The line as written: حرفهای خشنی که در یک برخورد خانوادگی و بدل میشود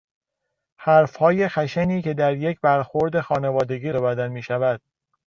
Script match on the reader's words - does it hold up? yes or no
yes